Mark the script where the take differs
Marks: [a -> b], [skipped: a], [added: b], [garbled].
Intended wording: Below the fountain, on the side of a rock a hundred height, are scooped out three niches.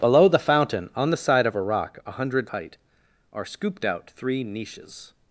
Below the fountain, on the side of a rock a hundred height, are scooped out three niches.